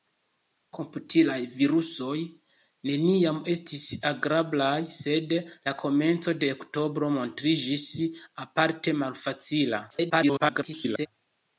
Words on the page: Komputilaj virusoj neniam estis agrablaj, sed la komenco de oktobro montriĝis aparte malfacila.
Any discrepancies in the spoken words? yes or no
yes